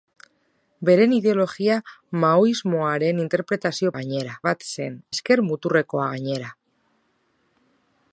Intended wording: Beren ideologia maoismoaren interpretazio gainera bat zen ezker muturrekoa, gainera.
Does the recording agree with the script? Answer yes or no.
yes